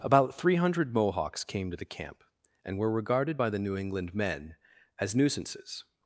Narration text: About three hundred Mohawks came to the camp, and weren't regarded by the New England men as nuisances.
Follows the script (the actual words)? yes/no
no